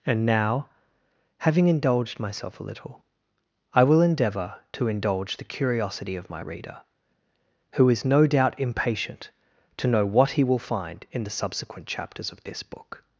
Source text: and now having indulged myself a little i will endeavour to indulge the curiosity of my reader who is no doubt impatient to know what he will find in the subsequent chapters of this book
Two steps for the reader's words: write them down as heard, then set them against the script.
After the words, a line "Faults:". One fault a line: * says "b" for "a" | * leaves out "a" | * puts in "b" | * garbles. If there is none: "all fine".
and now having indulged myself a little i will endeavour to indulge the curiosity of my reader who is no doubt impatient to know what he will find in the subsequent chapters of this book
Faults:
all fine